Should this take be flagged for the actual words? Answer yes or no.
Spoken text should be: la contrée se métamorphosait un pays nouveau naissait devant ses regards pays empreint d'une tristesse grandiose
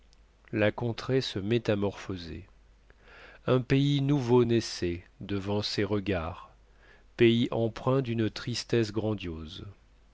no